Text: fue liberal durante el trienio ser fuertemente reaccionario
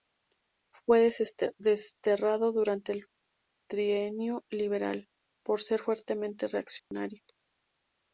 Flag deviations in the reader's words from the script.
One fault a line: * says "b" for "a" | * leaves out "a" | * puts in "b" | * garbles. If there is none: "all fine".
* says "desterrado" for "liberal"
* puts in "liberal por"